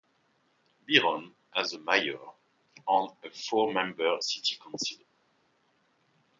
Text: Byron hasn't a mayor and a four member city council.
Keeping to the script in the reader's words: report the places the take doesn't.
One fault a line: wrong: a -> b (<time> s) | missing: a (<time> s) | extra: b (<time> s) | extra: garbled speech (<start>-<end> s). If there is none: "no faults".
wrong: hasn't -> has (1.6 s)